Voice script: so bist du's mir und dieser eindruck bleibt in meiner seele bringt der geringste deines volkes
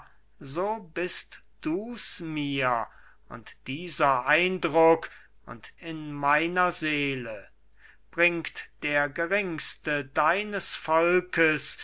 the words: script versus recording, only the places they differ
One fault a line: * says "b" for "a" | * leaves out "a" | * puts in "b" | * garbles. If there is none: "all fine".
* says "und" for "bleibt"